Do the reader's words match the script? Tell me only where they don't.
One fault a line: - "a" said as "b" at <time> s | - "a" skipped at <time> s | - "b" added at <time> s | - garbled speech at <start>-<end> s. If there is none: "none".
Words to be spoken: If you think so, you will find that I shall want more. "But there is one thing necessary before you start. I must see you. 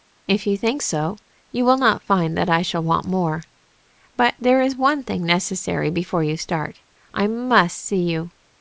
- "not" added at 1.8 s